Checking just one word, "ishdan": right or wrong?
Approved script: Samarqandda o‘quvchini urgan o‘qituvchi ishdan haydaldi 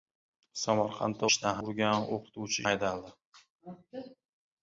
wrong